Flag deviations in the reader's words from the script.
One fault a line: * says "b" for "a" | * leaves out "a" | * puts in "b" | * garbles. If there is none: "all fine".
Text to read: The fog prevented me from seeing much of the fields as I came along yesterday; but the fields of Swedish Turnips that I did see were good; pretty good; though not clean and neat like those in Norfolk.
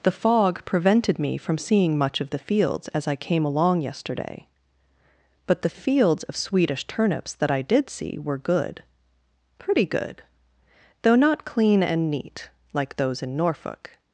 all fine